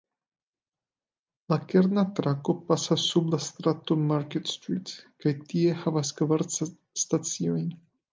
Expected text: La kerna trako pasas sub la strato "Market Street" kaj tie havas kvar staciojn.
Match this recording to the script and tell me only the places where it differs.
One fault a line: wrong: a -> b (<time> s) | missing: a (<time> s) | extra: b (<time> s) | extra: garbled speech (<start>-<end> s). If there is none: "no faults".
no faults